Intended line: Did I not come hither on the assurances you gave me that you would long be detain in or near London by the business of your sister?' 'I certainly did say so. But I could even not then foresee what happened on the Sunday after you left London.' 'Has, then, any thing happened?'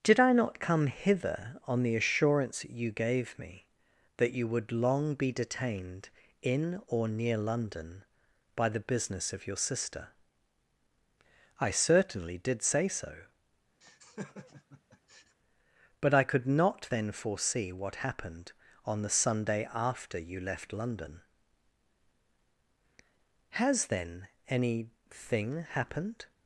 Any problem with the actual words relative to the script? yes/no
yes